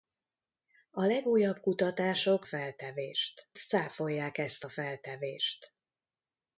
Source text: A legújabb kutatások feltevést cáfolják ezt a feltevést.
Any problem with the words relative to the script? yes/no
no